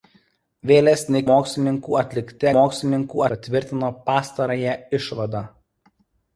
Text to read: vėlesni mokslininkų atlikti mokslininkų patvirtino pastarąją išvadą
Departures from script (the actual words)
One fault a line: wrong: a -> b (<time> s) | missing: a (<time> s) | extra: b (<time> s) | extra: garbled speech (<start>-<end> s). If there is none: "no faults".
no faults